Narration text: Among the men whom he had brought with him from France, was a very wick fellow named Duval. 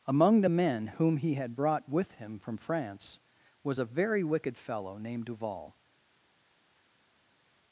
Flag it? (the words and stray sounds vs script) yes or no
yes